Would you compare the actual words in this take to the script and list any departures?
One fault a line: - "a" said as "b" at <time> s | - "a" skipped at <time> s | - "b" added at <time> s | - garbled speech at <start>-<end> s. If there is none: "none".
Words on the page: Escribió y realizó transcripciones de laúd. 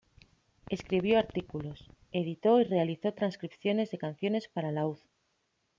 - "artículos editó" added at 1.2 s
- "canciones para" added at 4.0 s